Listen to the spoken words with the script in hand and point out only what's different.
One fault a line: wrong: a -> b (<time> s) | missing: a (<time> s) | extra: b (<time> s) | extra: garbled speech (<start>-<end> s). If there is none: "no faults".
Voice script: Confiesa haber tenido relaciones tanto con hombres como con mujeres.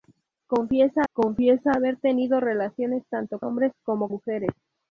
extra: confiesa (1.1 s)
missing: con (3.4 s)
missing: con (4.1 s)